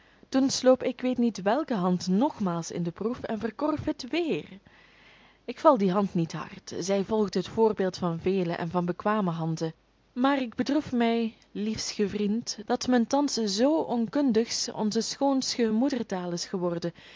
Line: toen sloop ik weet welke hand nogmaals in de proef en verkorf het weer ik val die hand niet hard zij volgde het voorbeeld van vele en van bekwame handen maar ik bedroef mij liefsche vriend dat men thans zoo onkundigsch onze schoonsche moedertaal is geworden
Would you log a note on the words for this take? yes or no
yes